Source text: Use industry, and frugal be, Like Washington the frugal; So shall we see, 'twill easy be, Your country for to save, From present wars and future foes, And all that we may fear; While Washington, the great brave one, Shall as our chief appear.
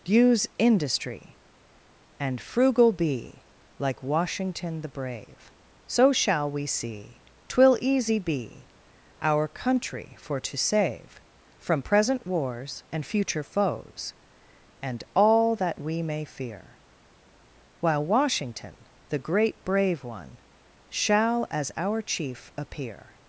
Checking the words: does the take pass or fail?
fail